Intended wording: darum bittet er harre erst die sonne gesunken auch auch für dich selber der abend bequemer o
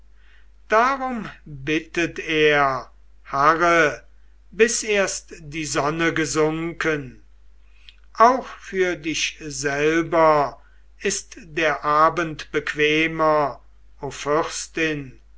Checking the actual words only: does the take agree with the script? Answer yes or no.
no